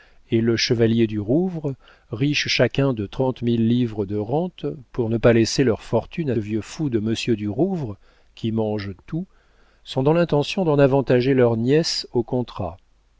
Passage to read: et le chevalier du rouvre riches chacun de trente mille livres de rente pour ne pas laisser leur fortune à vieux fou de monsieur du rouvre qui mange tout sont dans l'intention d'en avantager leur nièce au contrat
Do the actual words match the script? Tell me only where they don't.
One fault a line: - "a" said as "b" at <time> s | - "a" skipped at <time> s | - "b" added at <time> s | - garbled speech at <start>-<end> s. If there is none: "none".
none